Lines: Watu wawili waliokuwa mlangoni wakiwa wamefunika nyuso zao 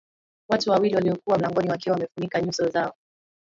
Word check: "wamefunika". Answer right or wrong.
right